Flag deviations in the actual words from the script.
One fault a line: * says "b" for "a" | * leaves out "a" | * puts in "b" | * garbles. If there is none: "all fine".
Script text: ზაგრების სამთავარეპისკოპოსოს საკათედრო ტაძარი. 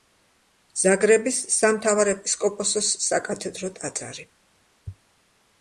all fine